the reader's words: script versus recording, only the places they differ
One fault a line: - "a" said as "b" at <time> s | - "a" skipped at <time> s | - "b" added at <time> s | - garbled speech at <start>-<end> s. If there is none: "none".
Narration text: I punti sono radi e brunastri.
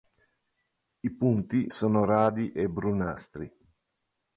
none